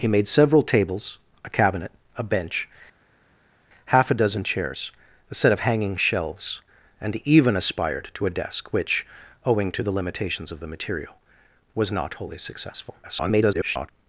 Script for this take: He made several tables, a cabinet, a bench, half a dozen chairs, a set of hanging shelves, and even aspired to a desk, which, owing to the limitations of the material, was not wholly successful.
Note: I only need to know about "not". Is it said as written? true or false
true